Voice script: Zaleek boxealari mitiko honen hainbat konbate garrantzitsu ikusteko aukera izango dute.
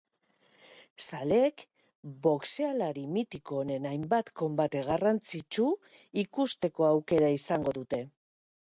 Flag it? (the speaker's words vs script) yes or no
no